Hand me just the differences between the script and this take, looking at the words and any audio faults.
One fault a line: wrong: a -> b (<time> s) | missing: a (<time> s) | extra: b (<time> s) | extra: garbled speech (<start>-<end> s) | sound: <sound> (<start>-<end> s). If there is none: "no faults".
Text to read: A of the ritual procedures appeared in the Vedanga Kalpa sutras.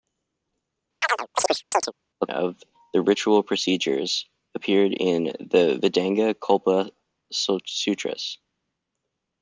sound: chirp (1.0-1.9 s)